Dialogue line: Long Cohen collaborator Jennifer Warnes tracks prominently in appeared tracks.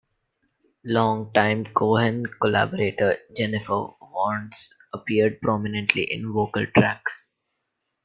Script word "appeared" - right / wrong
wrong